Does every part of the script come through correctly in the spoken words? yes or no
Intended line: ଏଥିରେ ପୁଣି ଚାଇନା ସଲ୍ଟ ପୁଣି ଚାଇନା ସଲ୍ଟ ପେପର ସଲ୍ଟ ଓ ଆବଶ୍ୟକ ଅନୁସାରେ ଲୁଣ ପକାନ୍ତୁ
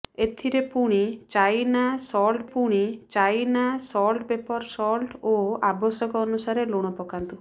yes